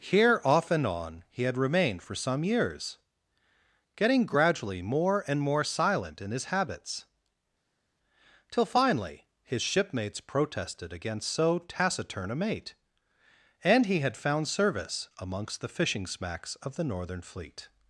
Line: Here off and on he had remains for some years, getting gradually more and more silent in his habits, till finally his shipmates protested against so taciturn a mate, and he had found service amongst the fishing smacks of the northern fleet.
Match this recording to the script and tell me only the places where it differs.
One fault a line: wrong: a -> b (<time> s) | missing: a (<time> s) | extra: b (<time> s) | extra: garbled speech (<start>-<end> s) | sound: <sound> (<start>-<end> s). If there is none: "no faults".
wrong: remains -> remained (1.6 s)